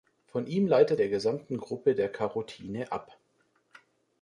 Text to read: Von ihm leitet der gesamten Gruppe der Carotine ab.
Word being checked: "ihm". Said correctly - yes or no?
yes